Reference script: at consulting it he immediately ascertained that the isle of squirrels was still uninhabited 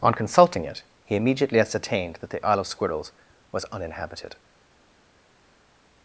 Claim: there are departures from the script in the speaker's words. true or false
true